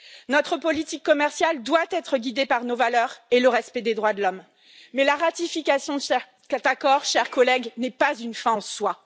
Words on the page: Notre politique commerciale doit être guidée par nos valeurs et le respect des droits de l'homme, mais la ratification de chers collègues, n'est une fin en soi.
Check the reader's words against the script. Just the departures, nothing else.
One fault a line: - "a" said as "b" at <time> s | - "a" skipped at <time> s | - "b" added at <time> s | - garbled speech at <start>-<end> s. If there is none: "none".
- "cet accord" added at 6.0 s
- "pas" added at 7.9 s